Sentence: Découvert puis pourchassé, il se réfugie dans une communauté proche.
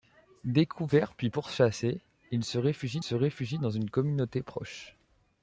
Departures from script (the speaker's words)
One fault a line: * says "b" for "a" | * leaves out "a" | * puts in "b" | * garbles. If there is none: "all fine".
* puts in "se réfugie"